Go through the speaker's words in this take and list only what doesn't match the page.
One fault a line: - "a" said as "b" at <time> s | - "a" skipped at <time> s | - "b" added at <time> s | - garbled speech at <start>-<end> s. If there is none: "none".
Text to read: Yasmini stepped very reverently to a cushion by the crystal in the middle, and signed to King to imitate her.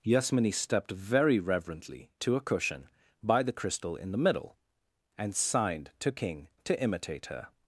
none